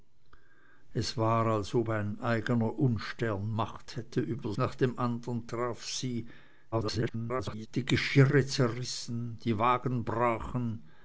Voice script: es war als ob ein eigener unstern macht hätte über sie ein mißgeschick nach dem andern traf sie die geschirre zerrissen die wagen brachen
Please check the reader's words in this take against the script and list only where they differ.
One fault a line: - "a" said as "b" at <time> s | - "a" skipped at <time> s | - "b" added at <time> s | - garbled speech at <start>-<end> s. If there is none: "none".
- "sie ein mißgeschick" skipped at 4.5 s
- garbled speech at 6.7-7.7 s